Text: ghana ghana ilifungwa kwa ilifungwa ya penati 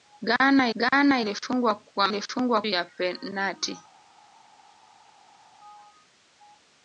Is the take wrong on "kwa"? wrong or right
right